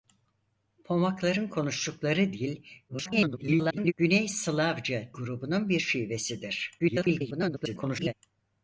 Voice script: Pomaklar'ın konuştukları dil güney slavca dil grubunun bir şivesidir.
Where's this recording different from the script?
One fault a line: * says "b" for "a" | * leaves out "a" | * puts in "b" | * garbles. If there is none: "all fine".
* garbles
* leaves out "dil"
* garbles